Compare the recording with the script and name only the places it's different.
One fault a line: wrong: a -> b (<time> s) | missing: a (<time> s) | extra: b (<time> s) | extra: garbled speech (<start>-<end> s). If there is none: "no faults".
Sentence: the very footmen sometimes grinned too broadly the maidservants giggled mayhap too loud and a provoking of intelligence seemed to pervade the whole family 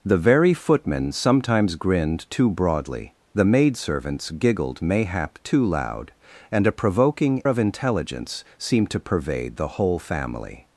no faults